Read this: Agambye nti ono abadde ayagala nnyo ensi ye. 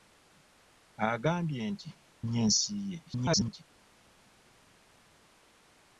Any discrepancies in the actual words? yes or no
yes